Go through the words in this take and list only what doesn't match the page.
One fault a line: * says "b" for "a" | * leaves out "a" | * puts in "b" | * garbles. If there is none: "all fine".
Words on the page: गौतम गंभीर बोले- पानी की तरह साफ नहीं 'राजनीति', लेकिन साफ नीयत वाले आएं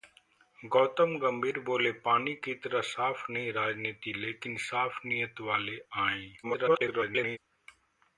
* garbles